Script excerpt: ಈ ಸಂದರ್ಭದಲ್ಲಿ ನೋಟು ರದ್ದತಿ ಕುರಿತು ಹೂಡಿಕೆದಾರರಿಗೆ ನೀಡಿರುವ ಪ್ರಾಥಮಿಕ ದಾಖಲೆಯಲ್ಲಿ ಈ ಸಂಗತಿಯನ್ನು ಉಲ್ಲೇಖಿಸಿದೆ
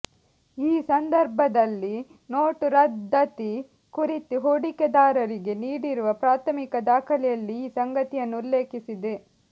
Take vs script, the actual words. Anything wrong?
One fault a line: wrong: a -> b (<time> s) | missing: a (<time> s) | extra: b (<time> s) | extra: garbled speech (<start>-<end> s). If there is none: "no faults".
no faults